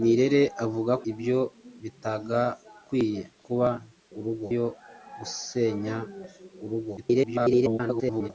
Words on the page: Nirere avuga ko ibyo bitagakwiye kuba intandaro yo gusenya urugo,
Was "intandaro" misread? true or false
true